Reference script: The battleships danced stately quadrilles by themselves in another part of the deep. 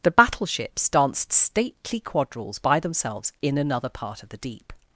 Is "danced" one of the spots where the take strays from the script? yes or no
no